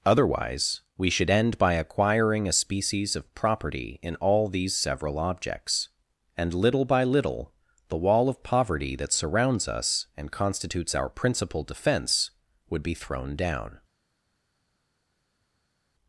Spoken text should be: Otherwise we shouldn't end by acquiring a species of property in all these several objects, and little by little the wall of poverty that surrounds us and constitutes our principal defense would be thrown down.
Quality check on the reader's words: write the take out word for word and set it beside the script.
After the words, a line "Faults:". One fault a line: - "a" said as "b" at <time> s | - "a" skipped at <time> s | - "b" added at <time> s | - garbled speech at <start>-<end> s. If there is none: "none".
Otherwise we should end by acquiring a species of property in all these several objects, and little by little the wall of poverty that surrounds us and constitutes our principal defense would be thrown down.
Faults:
- "shouldn't" said as "should" at 1.1 s